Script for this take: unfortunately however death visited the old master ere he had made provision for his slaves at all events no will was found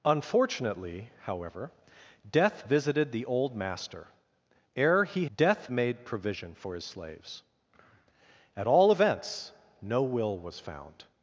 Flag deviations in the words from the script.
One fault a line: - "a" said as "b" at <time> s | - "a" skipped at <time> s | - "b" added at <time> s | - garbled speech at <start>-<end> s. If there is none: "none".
- "had" said as "death" at 5.3 s